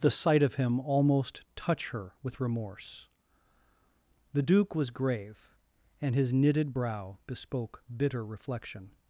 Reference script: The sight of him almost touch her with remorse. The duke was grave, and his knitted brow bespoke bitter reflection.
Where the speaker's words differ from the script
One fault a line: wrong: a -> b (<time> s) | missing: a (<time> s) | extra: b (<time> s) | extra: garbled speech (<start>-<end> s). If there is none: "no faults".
no faults